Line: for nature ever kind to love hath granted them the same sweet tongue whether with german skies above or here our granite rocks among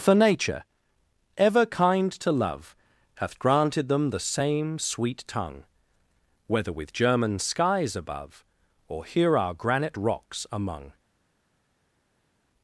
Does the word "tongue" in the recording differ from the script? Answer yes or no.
no